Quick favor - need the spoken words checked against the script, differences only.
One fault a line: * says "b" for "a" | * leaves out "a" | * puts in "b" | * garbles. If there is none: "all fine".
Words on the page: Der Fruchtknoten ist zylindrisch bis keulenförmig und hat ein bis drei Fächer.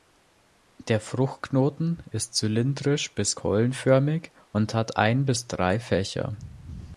all fine